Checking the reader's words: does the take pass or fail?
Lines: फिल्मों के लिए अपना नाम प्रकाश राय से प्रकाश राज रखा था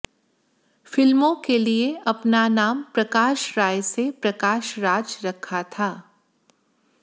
pass